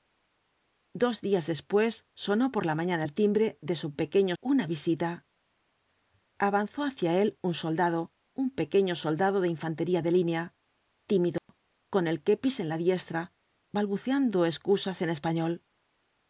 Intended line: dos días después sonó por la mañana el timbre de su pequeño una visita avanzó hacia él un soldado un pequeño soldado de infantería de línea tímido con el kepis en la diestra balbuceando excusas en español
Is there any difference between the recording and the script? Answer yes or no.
no